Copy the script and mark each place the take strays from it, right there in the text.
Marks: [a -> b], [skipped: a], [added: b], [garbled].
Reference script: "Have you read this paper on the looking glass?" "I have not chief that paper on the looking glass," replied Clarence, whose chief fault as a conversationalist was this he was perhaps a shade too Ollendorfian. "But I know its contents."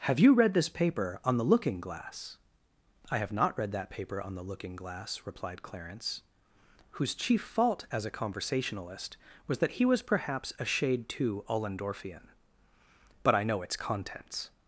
"Have you read this paper on the looking glass?" "I have not [chief -> read] that paper on the looking glass," replied Clarence, whose chief fault as a conversationalist was [this -> that] he was perhaps a shade too Ollendorfian. "But I know its contents."